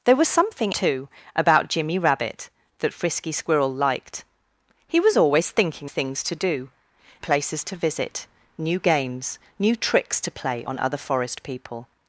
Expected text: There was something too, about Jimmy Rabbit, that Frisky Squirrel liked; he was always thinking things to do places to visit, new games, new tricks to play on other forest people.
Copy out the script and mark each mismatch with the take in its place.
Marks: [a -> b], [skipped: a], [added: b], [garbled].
There was something too, about Jimmy Rabbit, that Frisky Squirrel liked; he was always thinking things to do places to visit, new games, new tricks to play on other forest people.